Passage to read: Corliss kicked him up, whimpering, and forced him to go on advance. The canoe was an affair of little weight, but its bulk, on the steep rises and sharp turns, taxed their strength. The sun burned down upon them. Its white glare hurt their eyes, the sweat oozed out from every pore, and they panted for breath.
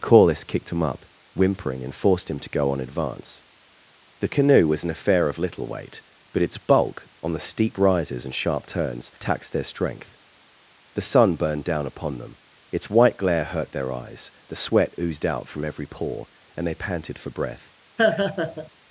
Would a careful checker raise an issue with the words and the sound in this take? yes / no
yes